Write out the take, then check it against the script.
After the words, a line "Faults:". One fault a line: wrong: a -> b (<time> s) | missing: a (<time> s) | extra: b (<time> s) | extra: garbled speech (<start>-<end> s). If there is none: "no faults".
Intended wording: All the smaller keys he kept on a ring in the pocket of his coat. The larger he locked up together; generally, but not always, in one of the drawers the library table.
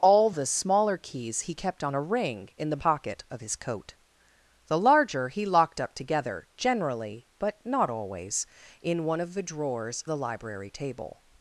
All the smaller keys he kept on a ring in the pocket of his coat. The larger he locked up together; generally, but not always, in one of the drawers the library table.
Faults:
no faults